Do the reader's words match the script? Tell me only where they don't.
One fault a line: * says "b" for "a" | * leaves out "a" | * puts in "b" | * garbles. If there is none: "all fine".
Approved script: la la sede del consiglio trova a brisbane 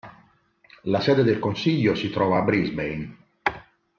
* leaves out "la"
* puts in "si"